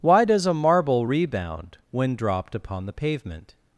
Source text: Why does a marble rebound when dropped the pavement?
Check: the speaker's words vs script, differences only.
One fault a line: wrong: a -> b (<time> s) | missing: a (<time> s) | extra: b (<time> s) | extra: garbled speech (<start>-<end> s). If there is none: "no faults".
extra: upon (2.5 s)